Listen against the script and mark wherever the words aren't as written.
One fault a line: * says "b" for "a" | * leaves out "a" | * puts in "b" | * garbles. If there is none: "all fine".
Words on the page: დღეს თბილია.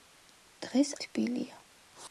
all fine